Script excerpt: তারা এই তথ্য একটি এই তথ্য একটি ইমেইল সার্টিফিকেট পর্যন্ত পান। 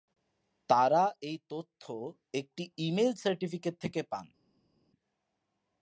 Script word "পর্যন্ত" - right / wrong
wrong